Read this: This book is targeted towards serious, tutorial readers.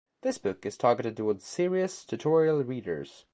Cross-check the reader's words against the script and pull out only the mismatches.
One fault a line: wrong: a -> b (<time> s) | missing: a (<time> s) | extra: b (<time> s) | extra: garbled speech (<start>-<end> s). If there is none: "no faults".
no faults